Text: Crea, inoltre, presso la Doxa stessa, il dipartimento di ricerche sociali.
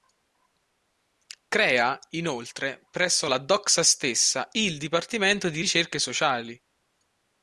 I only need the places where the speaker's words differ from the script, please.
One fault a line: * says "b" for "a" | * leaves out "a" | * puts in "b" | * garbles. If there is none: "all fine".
all fine